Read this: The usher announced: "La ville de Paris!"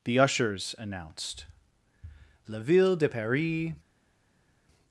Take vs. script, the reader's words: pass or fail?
fail